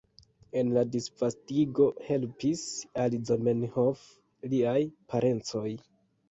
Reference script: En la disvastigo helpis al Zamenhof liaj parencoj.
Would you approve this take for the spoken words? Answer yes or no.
yes